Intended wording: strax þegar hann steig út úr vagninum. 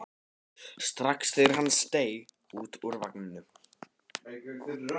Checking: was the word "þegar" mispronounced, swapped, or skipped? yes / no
no